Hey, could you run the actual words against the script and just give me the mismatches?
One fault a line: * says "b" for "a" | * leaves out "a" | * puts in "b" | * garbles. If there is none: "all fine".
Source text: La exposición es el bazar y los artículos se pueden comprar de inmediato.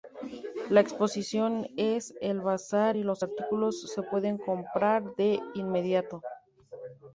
all fine